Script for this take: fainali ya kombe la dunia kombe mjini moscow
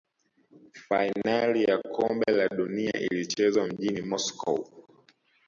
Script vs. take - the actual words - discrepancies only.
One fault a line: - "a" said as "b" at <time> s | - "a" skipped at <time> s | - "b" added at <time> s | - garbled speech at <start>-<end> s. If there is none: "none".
- "kombe" said as "ilichezwa" at 3.0 s